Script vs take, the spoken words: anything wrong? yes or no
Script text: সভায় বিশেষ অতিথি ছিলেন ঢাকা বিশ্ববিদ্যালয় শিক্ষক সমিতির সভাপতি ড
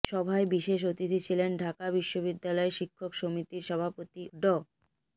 no